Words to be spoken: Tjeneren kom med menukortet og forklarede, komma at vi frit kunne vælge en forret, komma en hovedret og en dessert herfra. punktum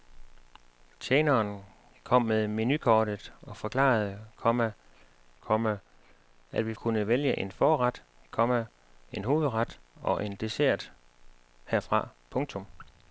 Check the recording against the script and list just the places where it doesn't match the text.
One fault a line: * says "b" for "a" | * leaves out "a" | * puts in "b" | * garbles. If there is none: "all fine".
* puts in "komma"
* leaves out "frit"